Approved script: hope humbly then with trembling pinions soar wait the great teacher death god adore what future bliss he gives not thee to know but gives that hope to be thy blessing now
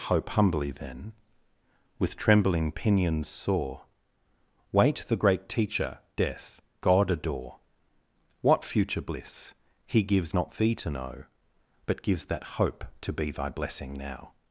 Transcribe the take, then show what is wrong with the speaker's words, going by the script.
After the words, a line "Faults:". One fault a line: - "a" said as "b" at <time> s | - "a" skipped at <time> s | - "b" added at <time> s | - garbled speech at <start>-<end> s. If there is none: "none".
hope humbly then with trembling pinions soar wait the great teacher death god adore what future bliss he gives not thee to know but gives that hope to be thy blessing now
Faults:
none